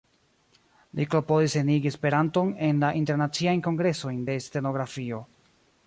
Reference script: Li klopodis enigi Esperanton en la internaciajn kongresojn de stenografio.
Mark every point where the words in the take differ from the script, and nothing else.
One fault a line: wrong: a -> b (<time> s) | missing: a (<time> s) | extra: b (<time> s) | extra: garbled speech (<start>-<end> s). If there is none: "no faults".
no faults